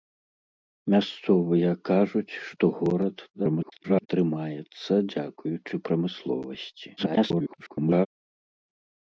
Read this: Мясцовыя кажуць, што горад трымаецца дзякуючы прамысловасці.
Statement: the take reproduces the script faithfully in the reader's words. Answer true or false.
false